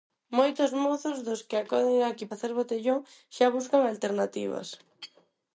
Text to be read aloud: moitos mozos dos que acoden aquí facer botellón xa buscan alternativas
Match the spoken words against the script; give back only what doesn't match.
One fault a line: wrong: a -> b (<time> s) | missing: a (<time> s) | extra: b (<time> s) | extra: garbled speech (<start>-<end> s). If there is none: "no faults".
no faults